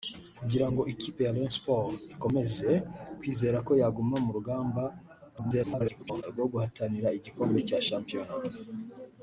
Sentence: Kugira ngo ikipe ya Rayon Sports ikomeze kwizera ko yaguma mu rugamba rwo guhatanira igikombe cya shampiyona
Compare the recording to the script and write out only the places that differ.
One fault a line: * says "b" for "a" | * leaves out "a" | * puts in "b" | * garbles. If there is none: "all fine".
* garbles